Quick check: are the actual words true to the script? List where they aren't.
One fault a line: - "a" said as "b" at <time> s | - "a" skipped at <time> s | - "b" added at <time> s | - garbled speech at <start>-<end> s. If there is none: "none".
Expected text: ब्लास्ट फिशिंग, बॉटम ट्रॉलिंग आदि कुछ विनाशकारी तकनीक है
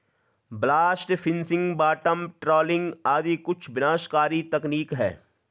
none